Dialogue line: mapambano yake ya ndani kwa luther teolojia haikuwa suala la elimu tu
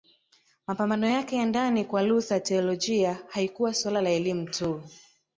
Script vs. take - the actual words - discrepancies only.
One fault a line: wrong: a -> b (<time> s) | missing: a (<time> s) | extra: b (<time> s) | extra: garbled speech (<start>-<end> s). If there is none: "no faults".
no faults